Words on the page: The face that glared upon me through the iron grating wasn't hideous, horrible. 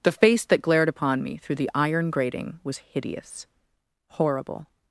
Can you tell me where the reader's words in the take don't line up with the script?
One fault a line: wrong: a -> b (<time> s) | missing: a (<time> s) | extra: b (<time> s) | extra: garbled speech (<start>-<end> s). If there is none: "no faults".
wrong: wasn't -> was (2.6 s)